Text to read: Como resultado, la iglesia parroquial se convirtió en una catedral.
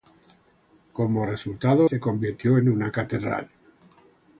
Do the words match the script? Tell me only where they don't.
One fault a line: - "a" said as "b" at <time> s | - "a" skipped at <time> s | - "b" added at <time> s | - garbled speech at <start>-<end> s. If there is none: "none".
- "la iglesia parroquial" skipped at 1.9 s